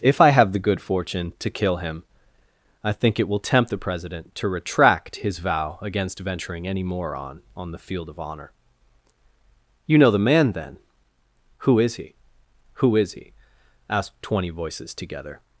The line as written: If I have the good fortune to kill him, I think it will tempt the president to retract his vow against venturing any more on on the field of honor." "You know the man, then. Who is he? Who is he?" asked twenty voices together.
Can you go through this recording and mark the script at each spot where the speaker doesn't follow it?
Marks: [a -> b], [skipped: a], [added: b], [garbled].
If I have the good fortune to kill him, I think it will tempt the president to retract his vow against venturing any more on on the field of honor." "You know the man, then. Who is he? Who is he?" asked twenty voices together.